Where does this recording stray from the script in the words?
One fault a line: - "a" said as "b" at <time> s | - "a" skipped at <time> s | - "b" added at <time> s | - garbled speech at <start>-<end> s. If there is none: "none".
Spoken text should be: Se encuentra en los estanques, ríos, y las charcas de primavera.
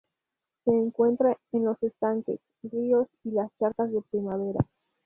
none